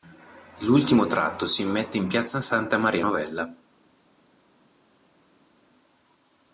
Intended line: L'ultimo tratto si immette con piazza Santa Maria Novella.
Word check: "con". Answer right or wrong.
wrong